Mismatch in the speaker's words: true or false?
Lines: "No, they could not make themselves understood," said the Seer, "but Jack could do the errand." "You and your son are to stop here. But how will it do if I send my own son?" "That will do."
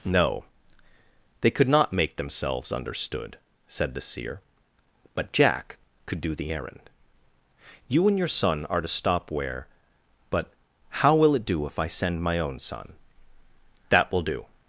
true